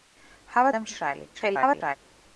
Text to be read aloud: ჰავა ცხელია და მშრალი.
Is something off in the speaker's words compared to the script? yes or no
yes